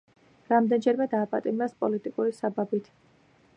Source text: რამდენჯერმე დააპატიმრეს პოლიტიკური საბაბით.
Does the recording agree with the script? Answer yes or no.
yes